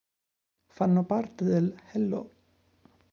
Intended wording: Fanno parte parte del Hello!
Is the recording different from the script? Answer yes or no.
yes